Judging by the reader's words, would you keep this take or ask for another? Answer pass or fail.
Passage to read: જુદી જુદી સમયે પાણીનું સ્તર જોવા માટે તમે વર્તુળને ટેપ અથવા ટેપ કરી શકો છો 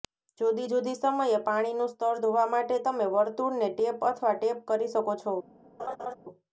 pass